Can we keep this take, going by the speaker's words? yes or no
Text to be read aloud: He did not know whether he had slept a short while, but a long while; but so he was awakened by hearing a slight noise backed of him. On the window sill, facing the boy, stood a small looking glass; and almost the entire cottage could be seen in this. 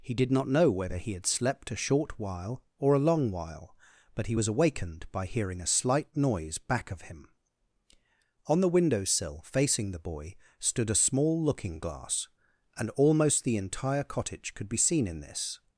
no